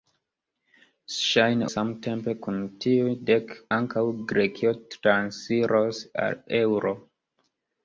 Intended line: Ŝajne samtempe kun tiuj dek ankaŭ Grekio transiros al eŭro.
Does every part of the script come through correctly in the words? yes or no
yes